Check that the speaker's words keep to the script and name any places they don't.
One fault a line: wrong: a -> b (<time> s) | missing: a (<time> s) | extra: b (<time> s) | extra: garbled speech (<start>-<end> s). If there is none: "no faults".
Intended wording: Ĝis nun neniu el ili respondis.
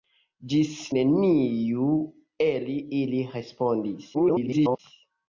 missing: nun (0.7 s)
extra: garbled speech (4.1-4.8 s)